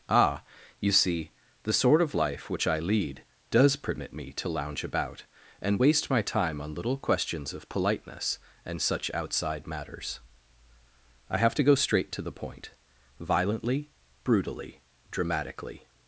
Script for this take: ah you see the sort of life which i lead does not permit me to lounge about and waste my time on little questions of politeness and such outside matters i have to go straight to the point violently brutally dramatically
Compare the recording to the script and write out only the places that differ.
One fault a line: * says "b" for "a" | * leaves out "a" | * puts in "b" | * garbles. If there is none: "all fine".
* leaves out "not"